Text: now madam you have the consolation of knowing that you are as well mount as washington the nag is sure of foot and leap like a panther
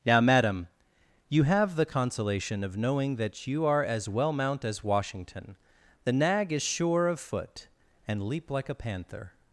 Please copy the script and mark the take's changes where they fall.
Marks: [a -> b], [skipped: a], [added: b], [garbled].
now madam you have the consolation of knowing that you are as well mount as washington the nag is sure of foot and leap like a panther